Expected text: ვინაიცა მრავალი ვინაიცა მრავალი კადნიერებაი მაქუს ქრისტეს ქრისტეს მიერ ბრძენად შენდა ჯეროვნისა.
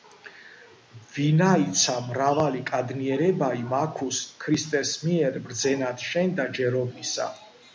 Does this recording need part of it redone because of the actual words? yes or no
yes